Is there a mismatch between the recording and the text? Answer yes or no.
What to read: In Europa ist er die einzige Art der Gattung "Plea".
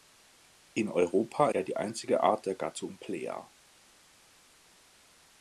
yes